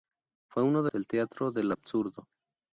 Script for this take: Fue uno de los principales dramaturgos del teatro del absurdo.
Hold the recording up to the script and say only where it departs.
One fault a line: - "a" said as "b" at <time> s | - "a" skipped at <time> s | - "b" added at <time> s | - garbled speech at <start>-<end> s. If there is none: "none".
- "los principales dramaturgos" skipped at 0.9 s